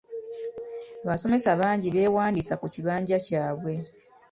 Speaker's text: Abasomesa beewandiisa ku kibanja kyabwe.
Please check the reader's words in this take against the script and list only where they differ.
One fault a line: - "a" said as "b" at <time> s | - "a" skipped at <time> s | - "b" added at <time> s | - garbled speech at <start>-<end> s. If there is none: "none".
- "bangi" added at 1.6 s